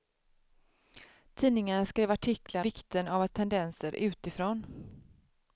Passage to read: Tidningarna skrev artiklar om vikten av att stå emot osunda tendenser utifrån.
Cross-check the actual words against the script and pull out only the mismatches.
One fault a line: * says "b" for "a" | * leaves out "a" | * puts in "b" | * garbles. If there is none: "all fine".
* leaves out "om"
* leaves out "stå emot osunda"